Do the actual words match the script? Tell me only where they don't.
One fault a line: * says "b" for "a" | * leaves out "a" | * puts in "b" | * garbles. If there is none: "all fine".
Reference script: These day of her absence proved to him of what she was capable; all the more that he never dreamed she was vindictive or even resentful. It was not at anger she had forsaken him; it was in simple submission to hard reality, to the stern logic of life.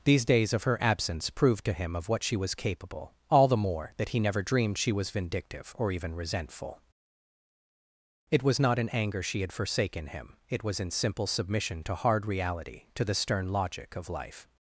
* says "days" for "day"
* says "in" for "at"